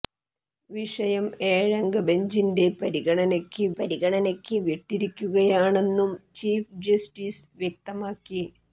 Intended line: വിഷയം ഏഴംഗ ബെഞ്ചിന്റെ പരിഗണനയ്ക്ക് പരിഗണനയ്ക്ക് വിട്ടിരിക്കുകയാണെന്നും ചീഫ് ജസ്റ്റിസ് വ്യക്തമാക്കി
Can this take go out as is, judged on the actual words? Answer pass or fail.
pass